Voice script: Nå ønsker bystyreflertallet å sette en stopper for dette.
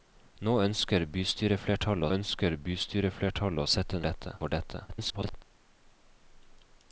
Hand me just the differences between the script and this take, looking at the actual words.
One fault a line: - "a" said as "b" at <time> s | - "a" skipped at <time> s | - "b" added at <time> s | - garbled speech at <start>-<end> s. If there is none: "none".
- "ønsker bystyreflertallet" added at 2.1 s
- "stopper" said as "dette" at 4.0 s
- garbled speech at 4.9-5.4 s